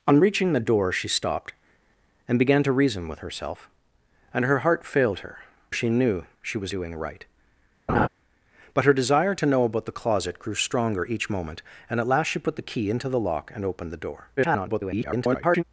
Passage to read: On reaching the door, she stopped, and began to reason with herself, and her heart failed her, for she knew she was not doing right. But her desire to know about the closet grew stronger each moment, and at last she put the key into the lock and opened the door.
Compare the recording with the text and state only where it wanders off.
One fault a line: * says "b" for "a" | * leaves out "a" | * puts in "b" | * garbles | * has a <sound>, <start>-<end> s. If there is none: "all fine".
* leaves out "for"
* leaves out "not"
* has a laugh, 7.9-8.1 s
* garbles